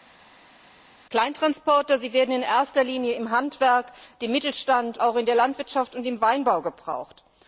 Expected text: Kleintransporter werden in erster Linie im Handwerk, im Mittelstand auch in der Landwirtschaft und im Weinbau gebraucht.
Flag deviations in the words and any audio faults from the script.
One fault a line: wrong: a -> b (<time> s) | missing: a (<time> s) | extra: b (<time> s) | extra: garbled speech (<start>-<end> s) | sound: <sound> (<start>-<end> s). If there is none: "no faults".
no faults